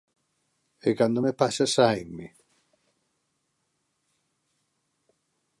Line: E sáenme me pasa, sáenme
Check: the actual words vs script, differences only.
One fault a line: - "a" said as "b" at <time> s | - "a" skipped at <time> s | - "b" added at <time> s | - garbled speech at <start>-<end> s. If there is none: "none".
- "sáenme" said as "cando" at 1.0 s